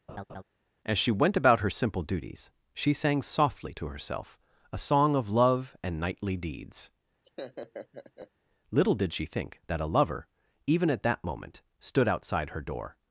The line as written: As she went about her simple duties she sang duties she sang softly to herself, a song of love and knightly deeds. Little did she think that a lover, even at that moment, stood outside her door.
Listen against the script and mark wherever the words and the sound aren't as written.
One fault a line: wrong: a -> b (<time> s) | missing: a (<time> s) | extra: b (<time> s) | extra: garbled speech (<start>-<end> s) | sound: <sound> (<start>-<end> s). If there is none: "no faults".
sound: laugh (0.1-0.4 s)
missing: duties she sang (3.2 s)
sound: laugh (7.2-8.3 s)